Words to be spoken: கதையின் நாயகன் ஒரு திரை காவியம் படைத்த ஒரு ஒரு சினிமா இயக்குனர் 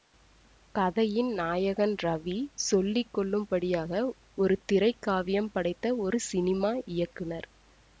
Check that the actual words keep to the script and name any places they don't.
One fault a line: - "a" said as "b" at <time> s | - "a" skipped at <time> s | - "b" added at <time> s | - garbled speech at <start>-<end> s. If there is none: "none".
- "ரவி சொல்லி கொள்ளும்படியாக" added at 2.0 s
- "ஒரு" skipped at 6.2 s